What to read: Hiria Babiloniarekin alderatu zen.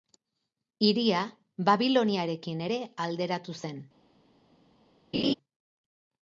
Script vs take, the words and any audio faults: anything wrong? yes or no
yes